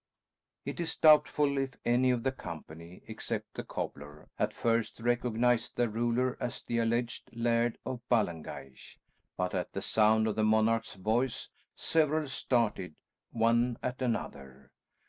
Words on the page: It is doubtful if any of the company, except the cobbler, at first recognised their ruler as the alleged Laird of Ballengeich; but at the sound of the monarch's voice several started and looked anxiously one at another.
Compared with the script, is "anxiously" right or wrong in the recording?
wrong